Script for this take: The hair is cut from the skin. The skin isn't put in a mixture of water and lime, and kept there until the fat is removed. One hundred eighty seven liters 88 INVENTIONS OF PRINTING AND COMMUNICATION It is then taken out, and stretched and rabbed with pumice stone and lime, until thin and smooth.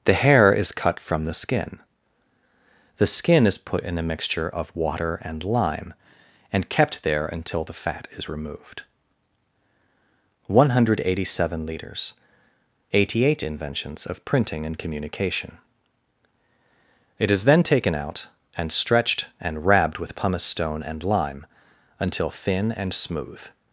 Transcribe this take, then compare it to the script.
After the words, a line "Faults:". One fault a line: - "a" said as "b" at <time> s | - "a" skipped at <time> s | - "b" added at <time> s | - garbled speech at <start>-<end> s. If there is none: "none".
The hair is cut from the skin. The skin is put in a mixture of water and lime, and kept there until the fat is removed. One hundred eighty seven liters 88 INVENTIONS OF PRINTING AND COMMUNICATION It is then taken out, and stretched and rabbed with pumice stone and lime, until thin and smooth.
Faults:
- "isn't" said as "is" at 3.4 s